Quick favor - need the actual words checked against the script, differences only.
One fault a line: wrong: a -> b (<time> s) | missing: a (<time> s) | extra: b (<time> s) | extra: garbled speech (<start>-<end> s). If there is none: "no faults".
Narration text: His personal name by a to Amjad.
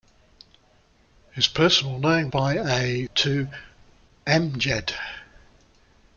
no faults